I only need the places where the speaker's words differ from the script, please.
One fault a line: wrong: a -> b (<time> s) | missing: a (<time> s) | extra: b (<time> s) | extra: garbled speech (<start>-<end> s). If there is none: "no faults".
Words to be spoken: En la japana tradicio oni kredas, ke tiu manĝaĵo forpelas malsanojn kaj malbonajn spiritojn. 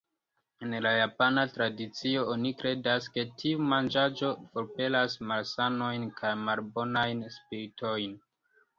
no faults